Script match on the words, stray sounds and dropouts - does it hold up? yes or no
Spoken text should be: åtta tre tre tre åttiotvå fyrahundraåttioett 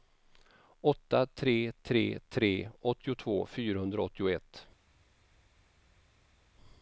yes